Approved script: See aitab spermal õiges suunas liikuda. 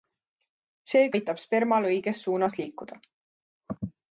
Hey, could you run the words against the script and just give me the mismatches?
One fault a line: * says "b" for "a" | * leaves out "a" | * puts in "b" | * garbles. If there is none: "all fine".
all fine